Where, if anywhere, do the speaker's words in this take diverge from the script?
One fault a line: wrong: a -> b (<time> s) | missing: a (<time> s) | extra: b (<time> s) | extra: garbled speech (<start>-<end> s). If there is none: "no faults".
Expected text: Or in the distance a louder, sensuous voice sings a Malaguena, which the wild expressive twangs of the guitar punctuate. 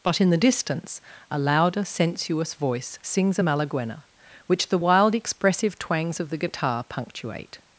wrong: Or -> But (0.0 s)